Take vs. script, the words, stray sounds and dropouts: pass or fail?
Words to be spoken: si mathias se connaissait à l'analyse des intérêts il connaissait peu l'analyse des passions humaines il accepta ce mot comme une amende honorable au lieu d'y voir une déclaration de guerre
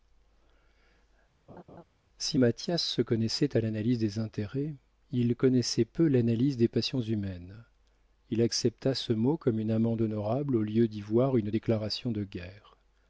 fail